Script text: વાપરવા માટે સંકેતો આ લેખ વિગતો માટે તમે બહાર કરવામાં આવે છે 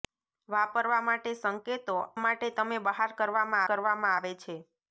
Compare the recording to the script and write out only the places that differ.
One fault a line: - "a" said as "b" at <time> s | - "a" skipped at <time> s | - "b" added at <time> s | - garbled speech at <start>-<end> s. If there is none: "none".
- "આ લેખ વિગતો" skipped at 2.0 s
- "કરવામાં" added at 3.7 s